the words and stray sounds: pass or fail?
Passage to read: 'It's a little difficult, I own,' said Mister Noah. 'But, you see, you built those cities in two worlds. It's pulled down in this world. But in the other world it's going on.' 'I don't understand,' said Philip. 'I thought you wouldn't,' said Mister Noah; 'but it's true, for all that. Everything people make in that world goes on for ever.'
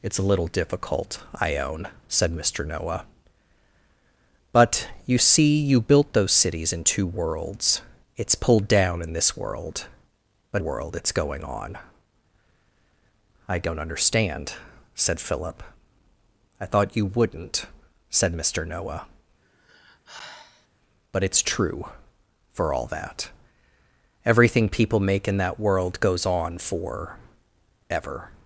fail